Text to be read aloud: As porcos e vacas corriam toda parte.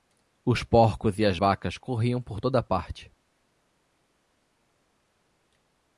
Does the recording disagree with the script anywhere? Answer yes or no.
yes